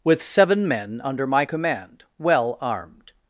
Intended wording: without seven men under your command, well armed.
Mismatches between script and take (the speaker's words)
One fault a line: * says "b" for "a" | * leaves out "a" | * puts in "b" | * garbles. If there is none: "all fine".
* says "with" for "without"
* says "my" for "your"